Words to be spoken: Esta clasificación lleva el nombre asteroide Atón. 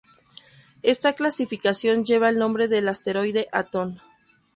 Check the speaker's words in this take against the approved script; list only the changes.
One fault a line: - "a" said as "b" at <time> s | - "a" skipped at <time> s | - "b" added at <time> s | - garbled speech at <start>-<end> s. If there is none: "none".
- "del" added at 2.7 s